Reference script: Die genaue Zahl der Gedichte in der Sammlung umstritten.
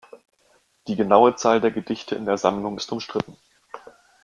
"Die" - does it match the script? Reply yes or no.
yes